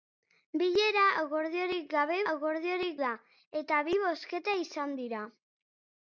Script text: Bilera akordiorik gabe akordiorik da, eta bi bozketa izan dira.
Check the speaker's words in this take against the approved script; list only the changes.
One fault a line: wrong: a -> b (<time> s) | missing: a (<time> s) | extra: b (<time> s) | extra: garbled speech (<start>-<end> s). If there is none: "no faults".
no faults